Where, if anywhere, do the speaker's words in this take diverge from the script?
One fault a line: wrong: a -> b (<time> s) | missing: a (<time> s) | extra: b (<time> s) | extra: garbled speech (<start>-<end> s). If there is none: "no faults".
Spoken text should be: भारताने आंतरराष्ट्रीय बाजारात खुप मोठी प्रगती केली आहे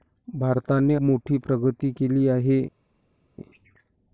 missing: आंतरराष्ट्रीय बाजारात खुप (0.9 s)